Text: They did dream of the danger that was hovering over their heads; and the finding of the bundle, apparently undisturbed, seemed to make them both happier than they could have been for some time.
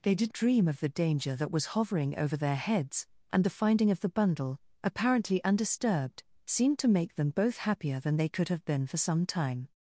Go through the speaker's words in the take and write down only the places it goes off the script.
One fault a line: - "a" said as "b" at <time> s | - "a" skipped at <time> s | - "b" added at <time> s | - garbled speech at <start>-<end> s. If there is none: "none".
none